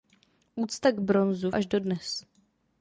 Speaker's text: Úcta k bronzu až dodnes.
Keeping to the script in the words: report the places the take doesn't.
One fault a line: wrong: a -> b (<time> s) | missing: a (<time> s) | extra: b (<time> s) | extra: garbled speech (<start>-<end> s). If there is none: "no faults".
no faults